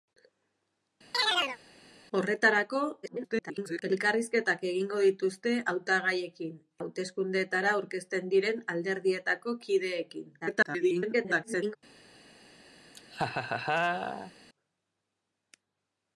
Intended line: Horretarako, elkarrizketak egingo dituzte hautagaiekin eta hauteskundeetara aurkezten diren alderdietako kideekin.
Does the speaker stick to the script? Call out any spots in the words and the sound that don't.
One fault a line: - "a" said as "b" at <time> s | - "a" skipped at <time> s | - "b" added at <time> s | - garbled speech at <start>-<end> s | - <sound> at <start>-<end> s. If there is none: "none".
- chirp at 1.1-1.6 s
- garbled speech at 3.0-3.8 s
- "eta" skipped at 6.6 s
- garbled speech at 10.4-11.8 s
- laugh at 12.9-14.3 s